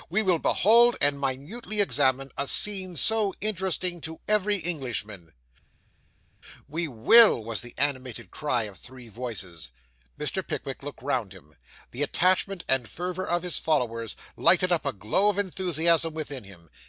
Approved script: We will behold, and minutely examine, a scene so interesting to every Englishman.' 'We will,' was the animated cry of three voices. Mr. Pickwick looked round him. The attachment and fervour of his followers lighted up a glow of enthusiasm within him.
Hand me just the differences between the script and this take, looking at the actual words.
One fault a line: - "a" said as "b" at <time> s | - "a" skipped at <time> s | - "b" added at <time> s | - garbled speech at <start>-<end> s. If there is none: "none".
none